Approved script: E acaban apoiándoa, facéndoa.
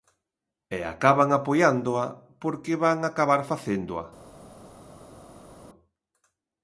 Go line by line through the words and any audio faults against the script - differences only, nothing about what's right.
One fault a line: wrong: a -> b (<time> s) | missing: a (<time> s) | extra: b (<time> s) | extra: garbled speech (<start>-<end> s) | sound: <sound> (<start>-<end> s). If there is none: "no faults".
extra: porque van acabar (2.4 s)